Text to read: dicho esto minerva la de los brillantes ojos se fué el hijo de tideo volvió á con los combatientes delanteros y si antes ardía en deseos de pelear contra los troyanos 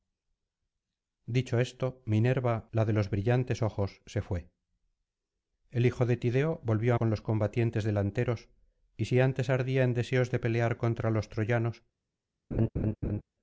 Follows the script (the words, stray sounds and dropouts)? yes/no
no